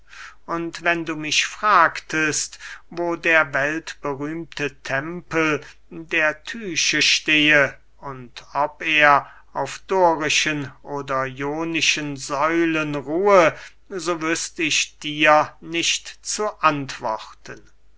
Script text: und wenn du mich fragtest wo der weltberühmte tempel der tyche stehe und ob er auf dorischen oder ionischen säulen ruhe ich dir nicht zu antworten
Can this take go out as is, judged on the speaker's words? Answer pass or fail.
fail